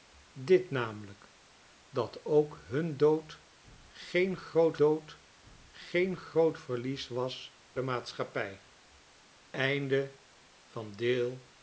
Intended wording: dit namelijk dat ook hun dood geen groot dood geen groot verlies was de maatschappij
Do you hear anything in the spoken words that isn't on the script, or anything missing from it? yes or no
no